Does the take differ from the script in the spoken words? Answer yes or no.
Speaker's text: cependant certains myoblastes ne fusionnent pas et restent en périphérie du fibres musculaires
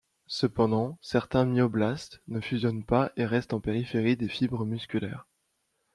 yes